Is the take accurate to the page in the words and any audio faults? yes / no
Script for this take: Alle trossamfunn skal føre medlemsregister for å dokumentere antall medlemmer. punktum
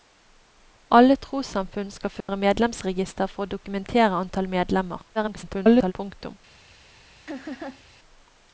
no